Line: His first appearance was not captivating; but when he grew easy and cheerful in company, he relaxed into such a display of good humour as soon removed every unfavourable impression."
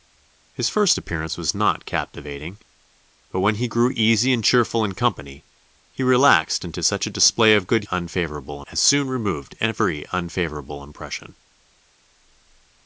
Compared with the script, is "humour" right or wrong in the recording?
wrong